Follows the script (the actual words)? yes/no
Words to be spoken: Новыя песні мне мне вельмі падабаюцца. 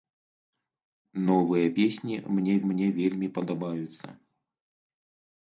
yes